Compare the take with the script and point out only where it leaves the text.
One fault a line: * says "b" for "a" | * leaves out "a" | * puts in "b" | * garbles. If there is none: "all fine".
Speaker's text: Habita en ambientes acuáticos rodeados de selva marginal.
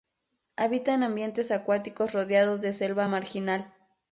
all fine